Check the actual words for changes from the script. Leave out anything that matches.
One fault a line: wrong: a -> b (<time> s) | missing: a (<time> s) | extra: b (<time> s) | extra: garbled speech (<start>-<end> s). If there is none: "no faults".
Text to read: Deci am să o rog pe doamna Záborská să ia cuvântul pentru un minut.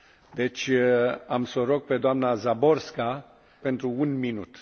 missing: să ia cuvântul (3.3 s)